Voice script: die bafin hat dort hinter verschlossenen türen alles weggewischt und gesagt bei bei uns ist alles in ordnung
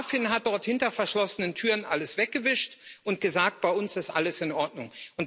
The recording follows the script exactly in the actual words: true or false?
false